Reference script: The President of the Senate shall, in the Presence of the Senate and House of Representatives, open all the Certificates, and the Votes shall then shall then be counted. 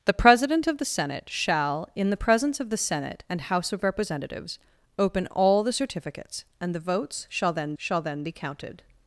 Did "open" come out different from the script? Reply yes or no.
no